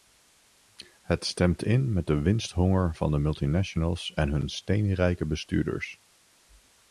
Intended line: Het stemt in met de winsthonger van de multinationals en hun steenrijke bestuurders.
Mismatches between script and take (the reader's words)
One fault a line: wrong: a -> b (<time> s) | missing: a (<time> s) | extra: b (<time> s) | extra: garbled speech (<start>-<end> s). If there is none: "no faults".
no faults